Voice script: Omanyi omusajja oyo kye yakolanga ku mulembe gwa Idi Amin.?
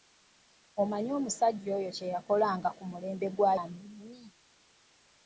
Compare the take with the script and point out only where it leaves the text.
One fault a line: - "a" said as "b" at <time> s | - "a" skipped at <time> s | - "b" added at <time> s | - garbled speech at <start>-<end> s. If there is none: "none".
- "Idi" skipped at 3.5 s